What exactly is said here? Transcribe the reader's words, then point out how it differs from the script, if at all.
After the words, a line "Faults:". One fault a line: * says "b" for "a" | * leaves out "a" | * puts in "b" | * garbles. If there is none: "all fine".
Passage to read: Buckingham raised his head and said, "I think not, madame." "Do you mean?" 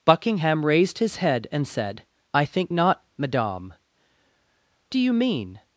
Buckingham raised his head and said, "I think not, madame." "Do you mean?"
Faults:
all fine